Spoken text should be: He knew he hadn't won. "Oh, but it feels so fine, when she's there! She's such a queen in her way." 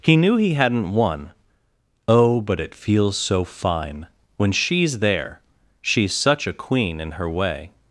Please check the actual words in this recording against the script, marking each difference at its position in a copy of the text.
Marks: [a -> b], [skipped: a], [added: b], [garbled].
He knew he hadn't won. "Oh, but it feels so fine, when she's there! She's such a queen in her way."